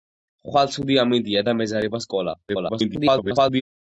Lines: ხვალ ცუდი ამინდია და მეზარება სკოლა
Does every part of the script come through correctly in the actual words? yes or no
no